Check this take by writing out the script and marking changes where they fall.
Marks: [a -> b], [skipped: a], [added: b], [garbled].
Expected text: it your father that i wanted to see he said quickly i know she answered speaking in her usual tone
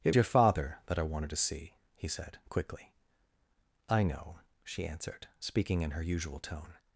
it your father that i wanted to see he said quickly i know she answered speaking in her usual tone